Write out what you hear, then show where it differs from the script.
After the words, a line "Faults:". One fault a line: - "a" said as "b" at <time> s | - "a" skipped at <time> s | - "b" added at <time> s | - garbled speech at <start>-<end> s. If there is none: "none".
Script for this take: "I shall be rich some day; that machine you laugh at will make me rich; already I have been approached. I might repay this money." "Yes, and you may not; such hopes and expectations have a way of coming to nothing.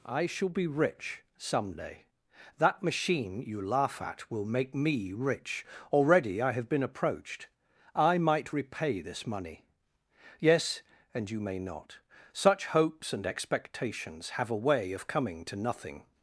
"I shall be rich some day; that machine you laugh at will make me rich; already I have been approached. I might repay this money." "Yes, and you may not; such hopes and expectations have a way of coming to nothing.
Faults:
none